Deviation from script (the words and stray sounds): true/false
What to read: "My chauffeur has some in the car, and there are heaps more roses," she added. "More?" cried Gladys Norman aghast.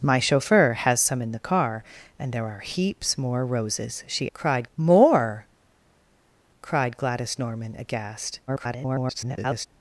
true